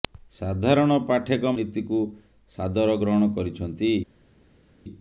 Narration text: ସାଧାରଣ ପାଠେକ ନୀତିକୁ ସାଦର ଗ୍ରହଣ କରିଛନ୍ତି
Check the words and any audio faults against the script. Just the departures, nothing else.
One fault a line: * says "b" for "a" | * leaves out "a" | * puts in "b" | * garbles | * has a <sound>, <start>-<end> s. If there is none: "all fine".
all fine